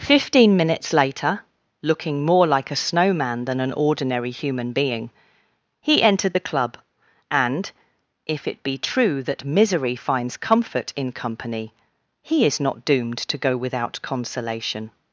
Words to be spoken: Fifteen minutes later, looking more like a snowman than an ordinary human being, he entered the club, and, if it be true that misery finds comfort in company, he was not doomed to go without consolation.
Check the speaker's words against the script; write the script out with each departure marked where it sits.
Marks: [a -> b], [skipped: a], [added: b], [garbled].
Fifteen minutes later, looking more like a snowman than an ordinary human being, he entered the club, and, if it be true that misery finds comfort in company, he [was -> is] not doomed to go without consolation.